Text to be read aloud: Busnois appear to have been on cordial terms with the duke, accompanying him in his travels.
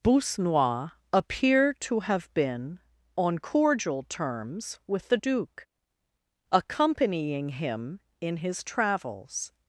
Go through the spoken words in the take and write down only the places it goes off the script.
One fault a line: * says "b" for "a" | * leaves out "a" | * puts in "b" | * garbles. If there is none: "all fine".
all fine